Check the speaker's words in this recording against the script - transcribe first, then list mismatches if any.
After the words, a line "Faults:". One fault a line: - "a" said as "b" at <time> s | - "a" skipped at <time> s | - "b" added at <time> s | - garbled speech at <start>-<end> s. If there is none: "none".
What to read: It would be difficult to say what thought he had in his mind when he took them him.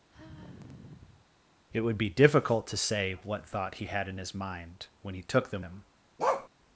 It would be difficult to say what thought he had in his mind when he took them him.
Faults:
none